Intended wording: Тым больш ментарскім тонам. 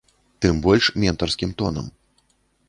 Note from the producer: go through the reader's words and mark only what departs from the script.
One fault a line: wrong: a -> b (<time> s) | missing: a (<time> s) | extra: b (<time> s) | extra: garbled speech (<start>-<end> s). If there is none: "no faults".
no faults